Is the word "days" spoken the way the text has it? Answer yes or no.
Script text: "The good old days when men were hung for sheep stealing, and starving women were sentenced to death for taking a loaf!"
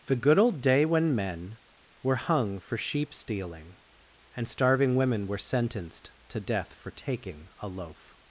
no